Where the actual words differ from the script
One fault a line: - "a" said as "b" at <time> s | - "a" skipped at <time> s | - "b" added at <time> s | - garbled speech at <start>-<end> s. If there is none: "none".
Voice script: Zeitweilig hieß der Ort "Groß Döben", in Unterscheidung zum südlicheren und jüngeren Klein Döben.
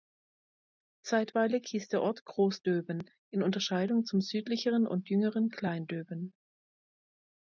none